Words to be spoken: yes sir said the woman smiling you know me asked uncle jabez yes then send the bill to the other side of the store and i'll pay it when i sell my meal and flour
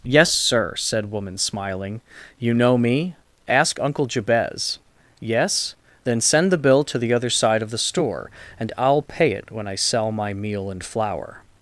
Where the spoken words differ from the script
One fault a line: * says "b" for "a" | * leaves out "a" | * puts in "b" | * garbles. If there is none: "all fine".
* leaves out "the"
* says "ask" for "asked"